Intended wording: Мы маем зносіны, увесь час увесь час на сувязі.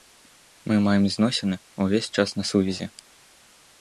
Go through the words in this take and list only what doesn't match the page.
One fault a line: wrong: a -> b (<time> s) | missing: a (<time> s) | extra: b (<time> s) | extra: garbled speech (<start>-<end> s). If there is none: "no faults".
missing: увесь час (2.4 s)